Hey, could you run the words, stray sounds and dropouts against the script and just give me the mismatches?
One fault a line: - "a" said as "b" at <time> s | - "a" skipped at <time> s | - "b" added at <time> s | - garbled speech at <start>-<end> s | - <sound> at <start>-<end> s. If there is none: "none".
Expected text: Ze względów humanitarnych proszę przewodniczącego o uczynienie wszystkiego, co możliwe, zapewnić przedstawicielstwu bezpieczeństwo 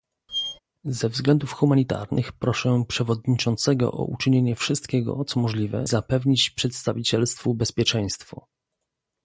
- squeak at 0.3-0.6 s